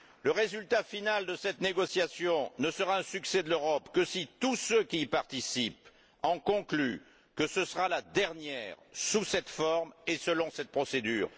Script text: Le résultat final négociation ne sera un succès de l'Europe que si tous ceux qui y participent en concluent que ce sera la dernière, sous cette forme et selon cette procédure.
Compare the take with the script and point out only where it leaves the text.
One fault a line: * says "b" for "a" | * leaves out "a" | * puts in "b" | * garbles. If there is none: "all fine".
* puts in "de cette"